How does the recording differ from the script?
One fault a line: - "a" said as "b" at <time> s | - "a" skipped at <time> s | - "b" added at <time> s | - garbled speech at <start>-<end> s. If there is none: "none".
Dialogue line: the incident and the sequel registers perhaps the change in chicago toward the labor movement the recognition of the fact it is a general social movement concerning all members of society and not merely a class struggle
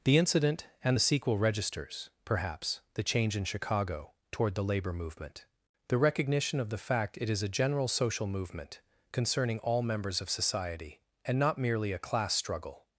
none